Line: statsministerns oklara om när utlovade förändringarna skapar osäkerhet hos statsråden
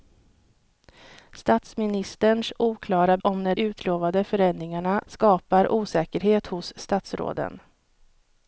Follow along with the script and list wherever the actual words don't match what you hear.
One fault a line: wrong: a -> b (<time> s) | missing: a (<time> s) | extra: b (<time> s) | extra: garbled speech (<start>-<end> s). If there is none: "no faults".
no faults